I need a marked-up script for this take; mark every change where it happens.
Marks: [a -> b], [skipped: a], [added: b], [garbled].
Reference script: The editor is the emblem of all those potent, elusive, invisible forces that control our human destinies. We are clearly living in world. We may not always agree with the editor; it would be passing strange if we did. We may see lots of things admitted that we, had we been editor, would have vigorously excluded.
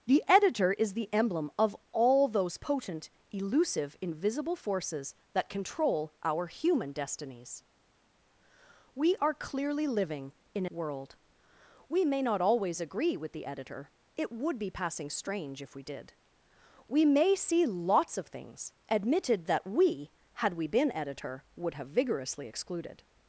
The editor is the emblem of all those potent, elusive, invisible forces that control our human destinies. We are clearly living in world. We may not always agree with the editor; it would be passing strange if we did. We may see lots of things admitted that we, had we been editor, would have vigorously excluded.